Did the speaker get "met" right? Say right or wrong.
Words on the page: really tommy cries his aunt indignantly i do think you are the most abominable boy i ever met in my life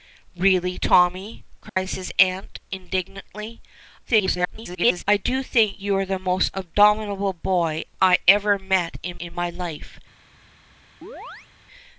right